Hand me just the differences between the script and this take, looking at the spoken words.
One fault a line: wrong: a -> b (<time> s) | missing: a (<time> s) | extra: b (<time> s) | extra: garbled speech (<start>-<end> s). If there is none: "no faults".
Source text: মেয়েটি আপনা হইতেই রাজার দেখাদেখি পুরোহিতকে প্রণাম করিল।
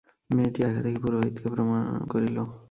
missing: আপনা হইতেই রাজার (0.6 s)
missing: প্রণাম (1.5 s)